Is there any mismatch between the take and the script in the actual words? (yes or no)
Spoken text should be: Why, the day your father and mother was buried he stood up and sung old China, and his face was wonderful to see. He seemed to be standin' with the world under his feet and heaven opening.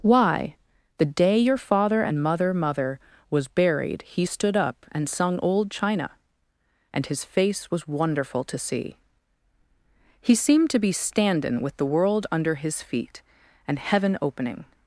yes